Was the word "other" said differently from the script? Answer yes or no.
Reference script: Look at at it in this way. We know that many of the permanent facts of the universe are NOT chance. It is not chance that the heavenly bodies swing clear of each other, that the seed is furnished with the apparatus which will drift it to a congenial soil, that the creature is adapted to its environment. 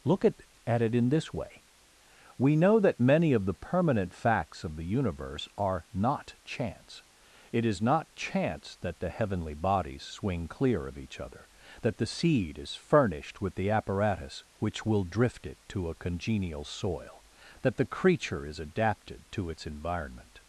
no